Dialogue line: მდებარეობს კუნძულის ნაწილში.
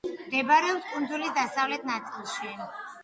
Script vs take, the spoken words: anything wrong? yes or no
yes